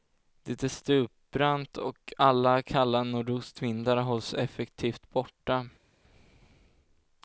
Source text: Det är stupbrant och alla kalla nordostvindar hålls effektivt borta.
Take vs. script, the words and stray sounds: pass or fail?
pass